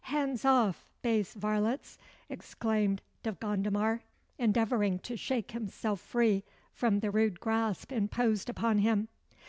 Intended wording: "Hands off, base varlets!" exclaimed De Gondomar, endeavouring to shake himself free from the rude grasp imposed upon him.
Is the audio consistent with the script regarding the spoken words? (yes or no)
yes